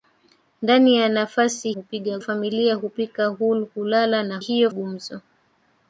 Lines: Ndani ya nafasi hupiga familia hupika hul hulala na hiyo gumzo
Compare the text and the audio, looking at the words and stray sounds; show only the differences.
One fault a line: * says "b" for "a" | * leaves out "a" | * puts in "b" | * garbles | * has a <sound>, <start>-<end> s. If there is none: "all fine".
all fine